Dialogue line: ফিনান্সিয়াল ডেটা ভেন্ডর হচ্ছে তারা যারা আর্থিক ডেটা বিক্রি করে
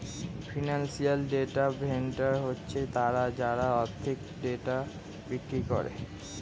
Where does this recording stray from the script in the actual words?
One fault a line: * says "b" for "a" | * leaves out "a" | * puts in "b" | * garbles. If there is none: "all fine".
all fine